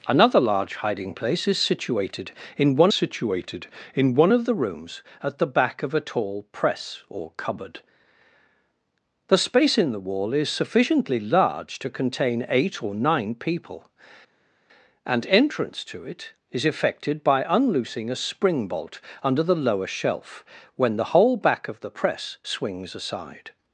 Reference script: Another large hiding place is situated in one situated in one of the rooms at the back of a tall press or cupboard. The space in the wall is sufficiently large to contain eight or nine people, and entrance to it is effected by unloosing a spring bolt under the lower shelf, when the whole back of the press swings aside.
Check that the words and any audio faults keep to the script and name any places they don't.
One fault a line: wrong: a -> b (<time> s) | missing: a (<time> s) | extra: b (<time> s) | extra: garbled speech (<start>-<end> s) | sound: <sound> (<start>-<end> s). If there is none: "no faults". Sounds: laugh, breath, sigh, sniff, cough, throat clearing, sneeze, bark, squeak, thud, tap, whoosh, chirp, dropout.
no faults